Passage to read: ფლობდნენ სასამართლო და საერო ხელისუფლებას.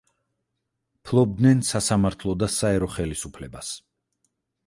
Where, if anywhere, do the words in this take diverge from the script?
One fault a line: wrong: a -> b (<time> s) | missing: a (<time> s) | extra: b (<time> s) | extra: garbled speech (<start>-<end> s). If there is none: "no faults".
no faults